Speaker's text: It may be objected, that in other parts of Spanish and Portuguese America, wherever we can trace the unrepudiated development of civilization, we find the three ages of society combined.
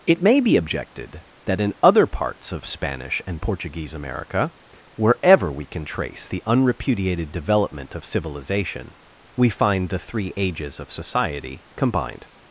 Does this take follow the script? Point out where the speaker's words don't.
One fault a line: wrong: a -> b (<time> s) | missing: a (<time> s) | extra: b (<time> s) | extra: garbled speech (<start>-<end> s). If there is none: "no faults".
no faults